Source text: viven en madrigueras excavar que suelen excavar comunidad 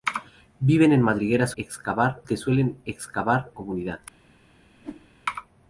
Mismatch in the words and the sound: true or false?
true